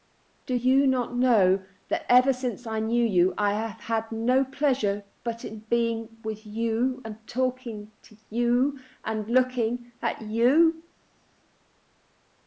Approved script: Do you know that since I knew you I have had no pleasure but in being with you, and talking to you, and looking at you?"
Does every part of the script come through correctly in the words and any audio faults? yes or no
no